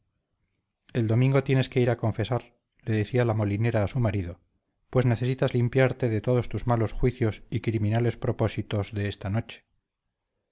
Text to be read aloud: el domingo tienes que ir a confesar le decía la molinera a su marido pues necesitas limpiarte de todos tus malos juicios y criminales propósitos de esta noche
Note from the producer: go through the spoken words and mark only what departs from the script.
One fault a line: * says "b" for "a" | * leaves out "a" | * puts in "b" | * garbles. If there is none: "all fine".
all fine